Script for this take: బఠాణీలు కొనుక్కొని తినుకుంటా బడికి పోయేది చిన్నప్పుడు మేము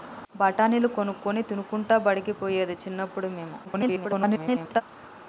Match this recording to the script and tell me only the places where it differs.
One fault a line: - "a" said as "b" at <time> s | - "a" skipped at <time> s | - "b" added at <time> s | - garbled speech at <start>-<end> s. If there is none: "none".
- garbled speech at 3.6-4.8 s